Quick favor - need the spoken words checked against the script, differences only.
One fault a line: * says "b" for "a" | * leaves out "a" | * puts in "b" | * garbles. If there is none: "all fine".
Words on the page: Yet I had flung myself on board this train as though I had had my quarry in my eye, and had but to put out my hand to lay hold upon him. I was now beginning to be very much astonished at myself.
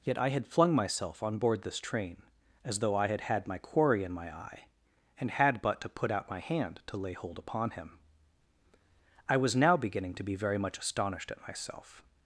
all fine